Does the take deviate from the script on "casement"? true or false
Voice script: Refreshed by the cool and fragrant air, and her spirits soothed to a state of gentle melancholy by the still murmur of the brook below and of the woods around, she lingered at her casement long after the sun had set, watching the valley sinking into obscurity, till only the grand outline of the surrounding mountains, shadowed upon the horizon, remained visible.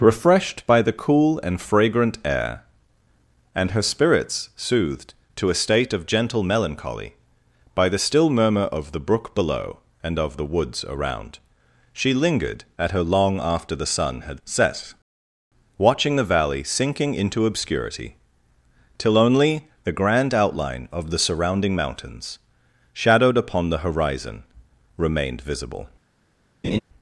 true